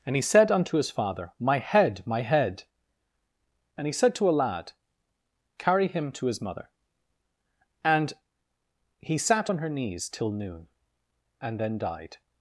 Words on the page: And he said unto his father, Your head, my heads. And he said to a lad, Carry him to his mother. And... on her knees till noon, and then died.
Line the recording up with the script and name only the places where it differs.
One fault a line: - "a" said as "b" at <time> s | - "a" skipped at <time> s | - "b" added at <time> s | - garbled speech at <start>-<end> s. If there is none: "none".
- "Your" said as "My" at 1.4 s
- "heads" said as "head" at 2.2 s
- "he sat" added at 9.0 s